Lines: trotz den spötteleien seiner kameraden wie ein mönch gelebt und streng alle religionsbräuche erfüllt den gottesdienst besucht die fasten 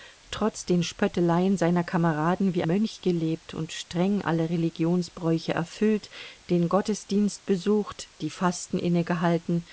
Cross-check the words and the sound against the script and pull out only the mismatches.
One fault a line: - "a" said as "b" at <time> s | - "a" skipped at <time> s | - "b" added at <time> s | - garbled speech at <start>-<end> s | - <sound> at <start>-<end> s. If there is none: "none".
- "ein" skipped at 2.6 s